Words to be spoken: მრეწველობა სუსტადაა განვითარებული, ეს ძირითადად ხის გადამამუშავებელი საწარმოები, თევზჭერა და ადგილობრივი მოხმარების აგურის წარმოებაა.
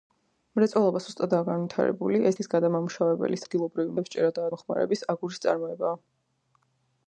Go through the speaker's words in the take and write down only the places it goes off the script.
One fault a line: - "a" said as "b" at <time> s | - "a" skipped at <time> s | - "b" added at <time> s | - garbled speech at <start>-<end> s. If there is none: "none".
- "ძირითადად" skipped at 2.4 s
- "საწარმოები" said as "ადგილობრივი" at 3.4 s
- "ადგილობრივი" skipped at 4.5 s